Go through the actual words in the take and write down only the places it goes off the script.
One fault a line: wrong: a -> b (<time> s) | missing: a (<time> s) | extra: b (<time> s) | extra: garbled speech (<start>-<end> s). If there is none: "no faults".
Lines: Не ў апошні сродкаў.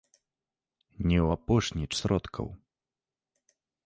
no faults